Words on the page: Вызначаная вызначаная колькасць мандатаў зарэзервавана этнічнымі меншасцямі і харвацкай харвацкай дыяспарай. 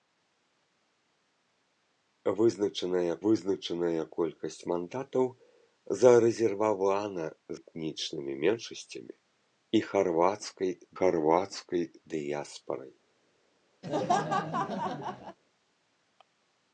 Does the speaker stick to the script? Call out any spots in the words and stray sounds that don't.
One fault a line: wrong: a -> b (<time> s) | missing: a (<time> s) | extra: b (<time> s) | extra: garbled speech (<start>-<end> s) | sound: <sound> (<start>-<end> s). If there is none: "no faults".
sound: laugh (13.8-15.4 s)